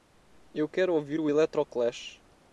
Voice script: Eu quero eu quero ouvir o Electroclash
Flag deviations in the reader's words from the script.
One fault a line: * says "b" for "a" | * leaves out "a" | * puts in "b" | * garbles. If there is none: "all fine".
* leaves out "eu quero"